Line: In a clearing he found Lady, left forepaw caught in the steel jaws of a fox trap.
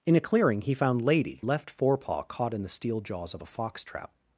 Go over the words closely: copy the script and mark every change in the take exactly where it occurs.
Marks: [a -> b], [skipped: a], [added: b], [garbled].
In a clearing he found Lady, left forepaw caught in the steel jaws of a fox trap.